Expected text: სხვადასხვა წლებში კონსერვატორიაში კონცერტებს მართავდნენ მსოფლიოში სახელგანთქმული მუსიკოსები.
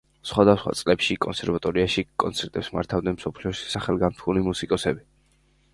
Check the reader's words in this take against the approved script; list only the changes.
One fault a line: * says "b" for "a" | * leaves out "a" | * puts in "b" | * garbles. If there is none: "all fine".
all fine